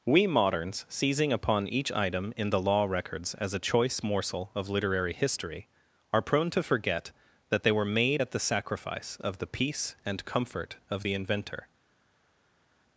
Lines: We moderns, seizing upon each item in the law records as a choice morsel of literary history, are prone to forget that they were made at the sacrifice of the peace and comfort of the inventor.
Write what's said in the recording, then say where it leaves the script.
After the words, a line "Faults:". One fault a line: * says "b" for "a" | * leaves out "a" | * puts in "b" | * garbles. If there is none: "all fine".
We moderns, seizing upon each item in the law records as a choice morsel of literary history, are prone to forget that they were made at the sacrifice of the peace and comfort of the inventor.
Faults:
all fine